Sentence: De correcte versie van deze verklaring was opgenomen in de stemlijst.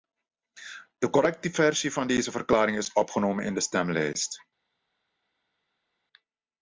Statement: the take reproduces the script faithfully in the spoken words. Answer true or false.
false